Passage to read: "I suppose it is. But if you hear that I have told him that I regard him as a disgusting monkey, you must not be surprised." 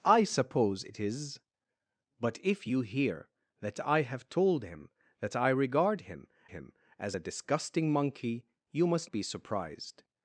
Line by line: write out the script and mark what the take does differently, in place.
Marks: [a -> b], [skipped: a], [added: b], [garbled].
"I suppose it is. But if you hear that I have told him that I regard him [added: him] as a disgusting monkey, you must [skipped: not] be surprised."